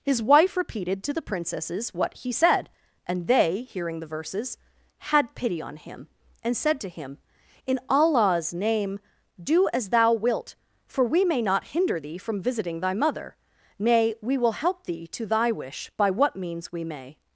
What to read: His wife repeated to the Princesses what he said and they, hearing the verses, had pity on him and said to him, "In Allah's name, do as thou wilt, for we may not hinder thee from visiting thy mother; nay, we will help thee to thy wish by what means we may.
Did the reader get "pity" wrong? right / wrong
right